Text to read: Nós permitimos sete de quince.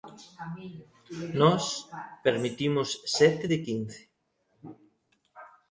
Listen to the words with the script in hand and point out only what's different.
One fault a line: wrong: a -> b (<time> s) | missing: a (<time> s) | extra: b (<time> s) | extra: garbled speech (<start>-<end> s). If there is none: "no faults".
no faults